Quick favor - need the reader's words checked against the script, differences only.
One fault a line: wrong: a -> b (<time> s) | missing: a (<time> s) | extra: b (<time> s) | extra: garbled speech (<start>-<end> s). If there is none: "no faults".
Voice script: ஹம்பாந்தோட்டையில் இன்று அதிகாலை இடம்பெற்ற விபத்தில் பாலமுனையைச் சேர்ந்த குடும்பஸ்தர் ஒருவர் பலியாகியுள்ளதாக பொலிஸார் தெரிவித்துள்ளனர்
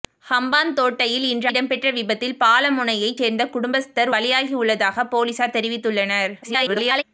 missing: அதிகாலை (1.5 s)
missing: ஒருவர் (4.1 s)
extra: garbled speech (6.4-7.0 s)